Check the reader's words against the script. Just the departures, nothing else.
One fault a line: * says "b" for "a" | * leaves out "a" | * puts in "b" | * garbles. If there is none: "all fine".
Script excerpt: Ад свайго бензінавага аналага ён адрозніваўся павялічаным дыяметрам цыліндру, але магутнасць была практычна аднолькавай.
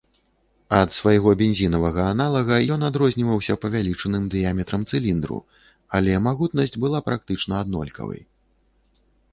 all fine